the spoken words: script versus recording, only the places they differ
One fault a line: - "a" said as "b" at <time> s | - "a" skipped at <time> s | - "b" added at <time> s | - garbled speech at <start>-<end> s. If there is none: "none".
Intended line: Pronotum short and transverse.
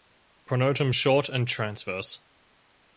none